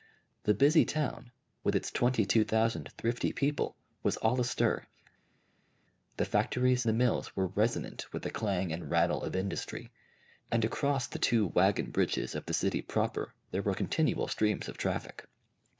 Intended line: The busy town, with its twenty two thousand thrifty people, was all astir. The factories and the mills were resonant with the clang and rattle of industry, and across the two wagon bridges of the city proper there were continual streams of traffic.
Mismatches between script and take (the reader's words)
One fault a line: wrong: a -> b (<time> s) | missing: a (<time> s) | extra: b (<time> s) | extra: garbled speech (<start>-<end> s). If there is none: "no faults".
missing: and (6.9 s)